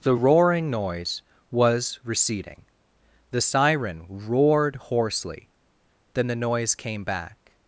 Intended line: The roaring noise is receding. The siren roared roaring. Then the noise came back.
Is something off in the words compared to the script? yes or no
yes